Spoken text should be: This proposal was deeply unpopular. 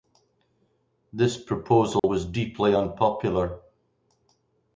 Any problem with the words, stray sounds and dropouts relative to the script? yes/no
yes